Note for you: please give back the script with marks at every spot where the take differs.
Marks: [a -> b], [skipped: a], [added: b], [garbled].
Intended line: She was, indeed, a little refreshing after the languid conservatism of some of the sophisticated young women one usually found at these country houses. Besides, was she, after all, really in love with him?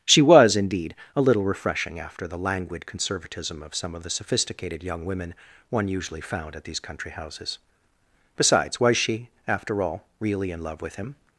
She was, indeed, a little refreshing after the languid conservatism of some of the sophisticated young women one usually found at these country houses. Besides, was she, after all, really in love with him?